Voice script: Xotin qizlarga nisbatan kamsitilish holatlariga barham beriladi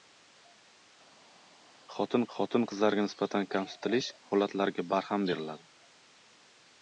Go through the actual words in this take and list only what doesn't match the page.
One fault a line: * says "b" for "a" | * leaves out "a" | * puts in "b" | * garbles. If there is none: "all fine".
* puts in "xotin"